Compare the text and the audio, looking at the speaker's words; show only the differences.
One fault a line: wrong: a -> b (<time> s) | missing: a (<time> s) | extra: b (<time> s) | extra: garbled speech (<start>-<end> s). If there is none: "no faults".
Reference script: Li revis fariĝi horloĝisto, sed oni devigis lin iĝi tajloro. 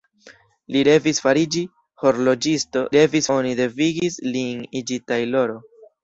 wrong: sed -> revis (3.0 s)